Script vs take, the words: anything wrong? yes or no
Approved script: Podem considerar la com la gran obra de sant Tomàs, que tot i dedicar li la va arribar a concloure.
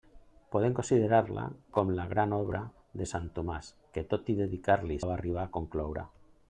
no